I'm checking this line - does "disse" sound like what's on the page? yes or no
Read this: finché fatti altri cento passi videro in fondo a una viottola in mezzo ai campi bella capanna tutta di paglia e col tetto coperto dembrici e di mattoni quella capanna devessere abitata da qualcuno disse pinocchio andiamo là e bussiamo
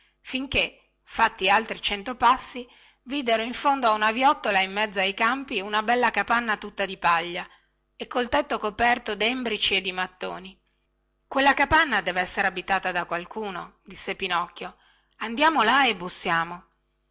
yes